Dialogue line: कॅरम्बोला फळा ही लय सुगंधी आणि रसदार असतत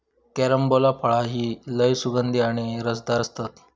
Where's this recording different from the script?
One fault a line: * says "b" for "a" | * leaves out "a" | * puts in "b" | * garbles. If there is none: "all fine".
all fine